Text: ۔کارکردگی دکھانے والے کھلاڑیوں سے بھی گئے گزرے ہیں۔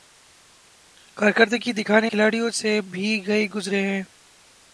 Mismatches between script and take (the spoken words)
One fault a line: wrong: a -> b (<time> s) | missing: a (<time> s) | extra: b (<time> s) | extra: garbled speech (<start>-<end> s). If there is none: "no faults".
missing: والے (2.1 s)